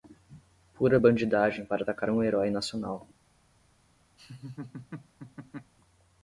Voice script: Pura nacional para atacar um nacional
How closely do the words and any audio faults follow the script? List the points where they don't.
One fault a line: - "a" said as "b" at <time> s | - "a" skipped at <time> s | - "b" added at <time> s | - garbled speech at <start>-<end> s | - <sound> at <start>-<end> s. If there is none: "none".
- "nacional" said as "bandidagem" at 1.0 s
- "herói" added at 2.2 s
- laugh at 4.2-5.7 s